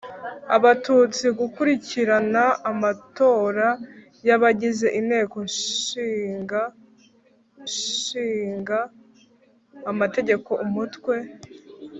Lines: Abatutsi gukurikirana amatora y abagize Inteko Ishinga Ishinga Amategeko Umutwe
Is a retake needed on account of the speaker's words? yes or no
no